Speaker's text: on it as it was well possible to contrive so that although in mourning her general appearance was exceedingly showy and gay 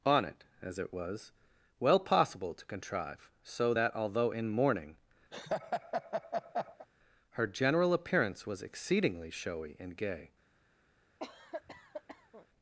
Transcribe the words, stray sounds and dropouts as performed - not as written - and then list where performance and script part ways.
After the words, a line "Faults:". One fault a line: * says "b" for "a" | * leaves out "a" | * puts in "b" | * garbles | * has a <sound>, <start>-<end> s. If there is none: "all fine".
on it as it was well possible to contrive so that although in mourning her general appearance was exceedingly showy and gay
Faults:
* has a laugh, 5.3-6.9 s
* has a cough, 11.2-12.5 s